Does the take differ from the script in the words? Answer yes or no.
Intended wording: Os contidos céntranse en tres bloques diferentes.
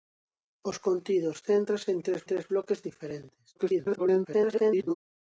yes